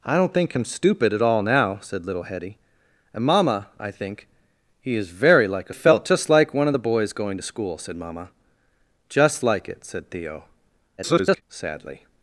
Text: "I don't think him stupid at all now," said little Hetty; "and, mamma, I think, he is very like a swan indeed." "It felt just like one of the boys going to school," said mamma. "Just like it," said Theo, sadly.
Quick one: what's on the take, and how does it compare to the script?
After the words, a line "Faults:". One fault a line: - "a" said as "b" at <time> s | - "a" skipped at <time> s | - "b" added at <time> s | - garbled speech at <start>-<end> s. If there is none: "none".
"I don't think him stupid at all now," said little Hetty; "and, mamma, I think, he is very like a felt just like one of the boys going to school," said mamma. "Just like it," said Theo, [garbled] sadly.
Faults:
- "swan indeed It" skipped at 5.8 s
- garbled speech at 11.0-11.4 s